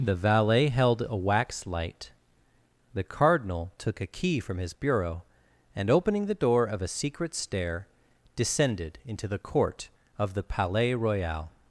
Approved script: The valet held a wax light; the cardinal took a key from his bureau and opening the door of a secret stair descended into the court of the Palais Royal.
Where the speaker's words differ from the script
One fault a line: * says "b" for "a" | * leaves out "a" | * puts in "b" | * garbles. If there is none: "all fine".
all fine